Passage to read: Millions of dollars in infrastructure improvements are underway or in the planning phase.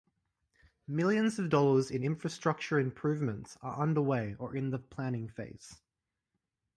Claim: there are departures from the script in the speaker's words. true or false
false